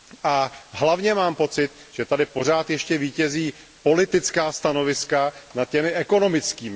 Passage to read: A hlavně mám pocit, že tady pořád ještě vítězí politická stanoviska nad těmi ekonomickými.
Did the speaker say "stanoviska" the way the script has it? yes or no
yes